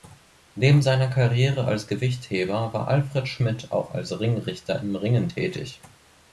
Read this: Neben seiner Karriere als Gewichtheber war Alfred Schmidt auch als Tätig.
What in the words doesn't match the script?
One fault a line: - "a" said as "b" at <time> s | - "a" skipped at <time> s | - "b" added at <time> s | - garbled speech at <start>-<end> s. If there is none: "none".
- "Ringrichter im Ringen" added at 4.2 s